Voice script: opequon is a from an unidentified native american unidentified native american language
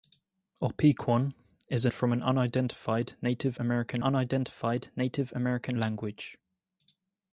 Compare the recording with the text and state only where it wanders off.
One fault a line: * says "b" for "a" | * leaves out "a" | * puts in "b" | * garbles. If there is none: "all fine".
all fine